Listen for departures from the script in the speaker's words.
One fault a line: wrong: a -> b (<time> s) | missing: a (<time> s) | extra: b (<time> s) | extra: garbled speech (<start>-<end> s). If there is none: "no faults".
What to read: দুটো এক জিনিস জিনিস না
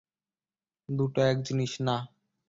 missing: জিনিস (1.7 s)